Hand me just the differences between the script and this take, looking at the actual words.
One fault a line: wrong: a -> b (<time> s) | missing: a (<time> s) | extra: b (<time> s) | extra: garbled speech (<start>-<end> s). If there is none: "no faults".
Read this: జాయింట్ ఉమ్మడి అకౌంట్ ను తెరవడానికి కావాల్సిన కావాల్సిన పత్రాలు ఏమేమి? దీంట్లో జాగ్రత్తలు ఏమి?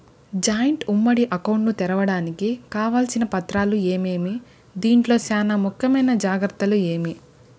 missing: కావాల్సిన (3.2 s)
extra: చానా ముఖ్యమైన (5.3 s)